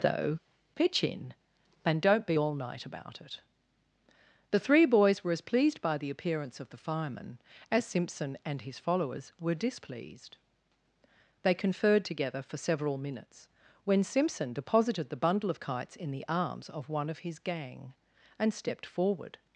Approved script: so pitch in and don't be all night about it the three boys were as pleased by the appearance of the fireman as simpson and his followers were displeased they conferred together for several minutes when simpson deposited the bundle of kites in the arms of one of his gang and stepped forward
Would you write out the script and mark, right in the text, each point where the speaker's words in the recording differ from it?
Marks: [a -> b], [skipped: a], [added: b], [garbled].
[so -> though] pitch in and don't be all night about it the three boys were as pleased by the appearance of the fireman as simpson and his followers were displeased they conferred together for several minutes when simpson deposited the bundle of kites in the arms of one of his gang and stepped forward